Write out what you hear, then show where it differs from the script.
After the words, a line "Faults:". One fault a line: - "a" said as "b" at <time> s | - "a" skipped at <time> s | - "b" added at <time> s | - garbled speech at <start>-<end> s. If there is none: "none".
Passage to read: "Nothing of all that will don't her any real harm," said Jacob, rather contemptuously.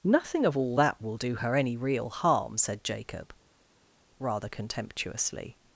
"Nothing of all that will do her any real harm," said Jacob, rather contemptuously.
Faults:
- "don't" said as "do" at 1.2 s